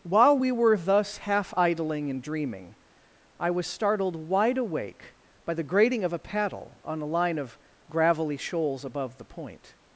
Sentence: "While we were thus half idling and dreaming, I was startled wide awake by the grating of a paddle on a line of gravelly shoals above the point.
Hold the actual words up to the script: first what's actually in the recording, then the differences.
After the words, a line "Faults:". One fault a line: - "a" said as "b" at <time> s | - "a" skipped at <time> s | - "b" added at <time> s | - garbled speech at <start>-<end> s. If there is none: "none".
"While we were thus half idling and dreaming, I was startled wide awake by the grating of a paddle on a line of gravelly shoals above the point.
Faults:
none